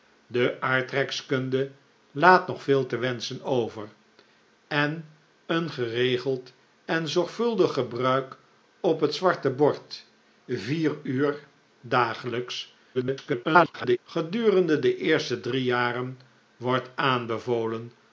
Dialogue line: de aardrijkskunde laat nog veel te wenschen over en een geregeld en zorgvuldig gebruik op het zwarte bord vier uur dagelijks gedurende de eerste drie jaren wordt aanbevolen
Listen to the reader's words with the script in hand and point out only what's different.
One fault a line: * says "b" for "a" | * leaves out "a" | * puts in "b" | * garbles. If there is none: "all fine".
* garbles